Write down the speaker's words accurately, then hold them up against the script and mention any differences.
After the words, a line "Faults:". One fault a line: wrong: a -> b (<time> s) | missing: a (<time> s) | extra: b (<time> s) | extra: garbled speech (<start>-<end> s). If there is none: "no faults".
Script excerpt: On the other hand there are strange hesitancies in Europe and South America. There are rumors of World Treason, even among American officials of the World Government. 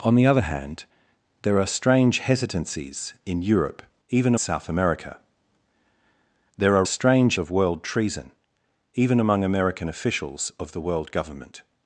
On the other hand there are strange hesitancies in Europe even South America. There are strange of World Treason, even among American officials of the World Government.
Faults:
wrong: and -> even (4.1 s)
wrong: rumors -> strange (6.9 s)